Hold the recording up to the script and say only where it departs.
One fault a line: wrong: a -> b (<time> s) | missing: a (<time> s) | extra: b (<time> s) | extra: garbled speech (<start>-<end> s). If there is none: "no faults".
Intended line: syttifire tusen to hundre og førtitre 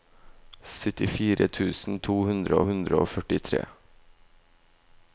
extra: hundre (2.7 s)